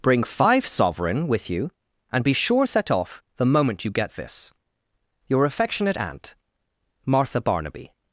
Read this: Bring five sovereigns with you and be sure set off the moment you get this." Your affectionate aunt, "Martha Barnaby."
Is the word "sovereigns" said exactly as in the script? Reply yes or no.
no